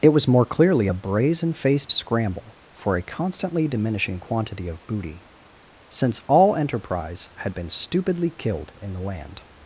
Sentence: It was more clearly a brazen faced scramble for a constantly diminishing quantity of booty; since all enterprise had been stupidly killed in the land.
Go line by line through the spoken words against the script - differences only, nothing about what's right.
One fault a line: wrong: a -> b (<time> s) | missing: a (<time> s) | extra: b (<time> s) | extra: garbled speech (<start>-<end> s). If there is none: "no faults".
no faults